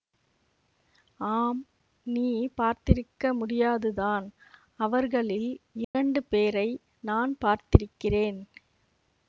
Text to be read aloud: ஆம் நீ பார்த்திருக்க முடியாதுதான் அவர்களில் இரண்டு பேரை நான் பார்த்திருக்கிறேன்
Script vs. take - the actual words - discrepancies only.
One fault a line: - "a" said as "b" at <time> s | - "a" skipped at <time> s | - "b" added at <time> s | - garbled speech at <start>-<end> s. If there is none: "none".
none